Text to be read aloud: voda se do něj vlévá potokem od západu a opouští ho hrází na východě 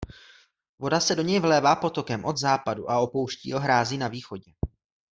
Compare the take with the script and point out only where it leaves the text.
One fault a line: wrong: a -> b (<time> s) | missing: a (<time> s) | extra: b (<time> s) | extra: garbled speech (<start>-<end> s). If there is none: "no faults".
no faults